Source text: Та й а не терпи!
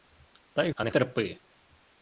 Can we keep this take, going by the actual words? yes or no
yes